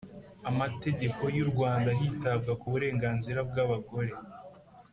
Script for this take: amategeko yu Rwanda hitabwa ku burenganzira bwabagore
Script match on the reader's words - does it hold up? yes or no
yes